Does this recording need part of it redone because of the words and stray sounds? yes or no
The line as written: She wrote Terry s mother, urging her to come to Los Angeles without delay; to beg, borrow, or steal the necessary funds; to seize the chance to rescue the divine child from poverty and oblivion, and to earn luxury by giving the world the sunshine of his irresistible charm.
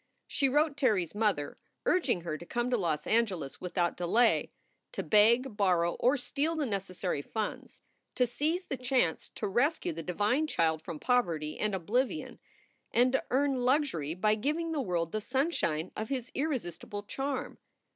no